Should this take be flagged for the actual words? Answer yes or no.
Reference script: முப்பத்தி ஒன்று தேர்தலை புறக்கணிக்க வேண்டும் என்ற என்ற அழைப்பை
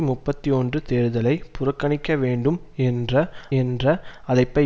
no